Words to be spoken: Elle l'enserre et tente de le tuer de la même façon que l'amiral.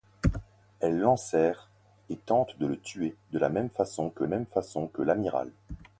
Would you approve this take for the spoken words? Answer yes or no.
no